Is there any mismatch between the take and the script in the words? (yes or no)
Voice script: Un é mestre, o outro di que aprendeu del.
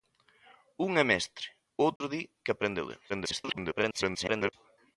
yes